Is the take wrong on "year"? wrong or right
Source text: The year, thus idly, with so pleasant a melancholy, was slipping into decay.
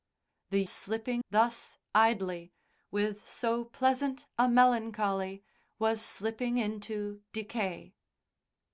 wrong